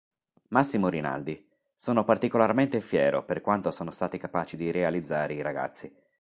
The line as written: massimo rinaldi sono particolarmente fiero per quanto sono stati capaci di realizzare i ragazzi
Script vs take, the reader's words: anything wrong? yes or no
no